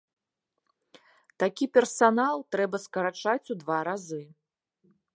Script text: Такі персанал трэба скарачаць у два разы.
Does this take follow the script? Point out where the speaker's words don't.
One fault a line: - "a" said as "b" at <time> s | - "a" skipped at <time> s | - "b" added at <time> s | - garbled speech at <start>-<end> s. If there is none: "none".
none